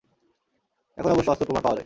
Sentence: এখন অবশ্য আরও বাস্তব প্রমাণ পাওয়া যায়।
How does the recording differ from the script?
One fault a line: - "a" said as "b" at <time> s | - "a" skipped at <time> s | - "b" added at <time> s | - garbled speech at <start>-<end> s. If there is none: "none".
- "আরও" skipped at 1.3 s